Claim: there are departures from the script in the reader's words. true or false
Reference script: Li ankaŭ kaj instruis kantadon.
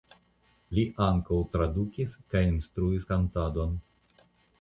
true